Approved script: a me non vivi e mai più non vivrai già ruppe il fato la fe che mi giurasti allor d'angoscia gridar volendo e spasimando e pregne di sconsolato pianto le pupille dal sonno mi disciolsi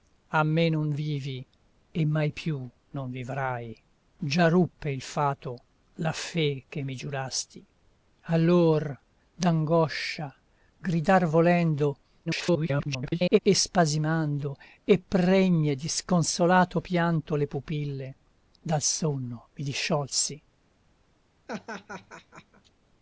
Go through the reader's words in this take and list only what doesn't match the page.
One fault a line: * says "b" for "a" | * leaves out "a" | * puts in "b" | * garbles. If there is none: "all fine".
* garbles